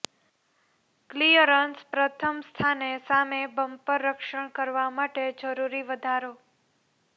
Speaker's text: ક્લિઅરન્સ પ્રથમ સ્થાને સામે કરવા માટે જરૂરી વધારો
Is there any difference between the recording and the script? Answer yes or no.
yes